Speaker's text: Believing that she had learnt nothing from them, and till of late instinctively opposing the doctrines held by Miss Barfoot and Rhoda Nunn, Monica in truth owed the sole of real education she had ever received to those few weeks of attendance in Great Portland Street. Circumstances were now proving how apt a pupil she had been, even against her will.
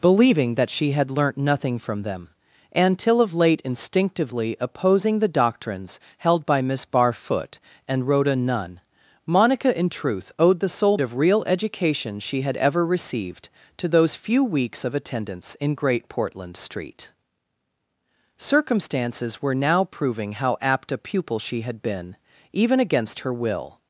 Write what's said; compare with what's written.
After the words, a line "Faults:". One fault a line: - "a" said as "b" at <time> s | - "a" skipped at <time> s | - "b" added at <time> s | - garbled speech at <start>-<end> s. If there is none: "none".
Believing that she had learnt nothing from them, and till of late instinctively opposing the doctrines held by Miss Barfoot and Rhoda Nunn, Monica in truth owed the sole of real education she had ever received to those few weeks of attendance in Great Portland Street. Circumstances were now proving how apt a pupil she had been, even against her will.
Faults:
none